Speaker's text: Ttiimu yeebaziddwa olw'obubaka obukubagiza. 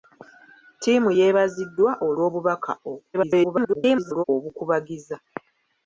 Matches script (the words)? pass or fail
fail